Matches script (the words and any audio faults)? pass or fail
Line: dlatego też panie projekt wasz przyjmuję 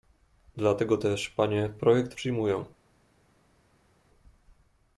fail